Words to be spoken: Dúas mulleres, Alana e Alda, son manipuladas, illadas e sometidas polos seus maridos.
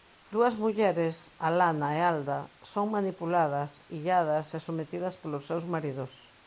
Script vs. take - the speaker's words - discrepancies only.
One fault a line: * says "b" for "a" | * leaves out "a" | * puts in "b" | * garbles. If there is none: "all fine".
all fine